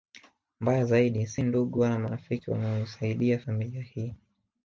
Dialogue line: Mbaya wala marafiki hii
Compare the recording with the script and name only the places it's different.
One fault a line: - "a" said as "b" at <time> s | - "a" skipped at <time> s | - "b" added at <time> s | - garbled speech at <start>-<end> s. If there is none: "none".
- "zaidi si ndugu" added at 0.8 s
- "wanaoisaidia familia" added at 2.5 s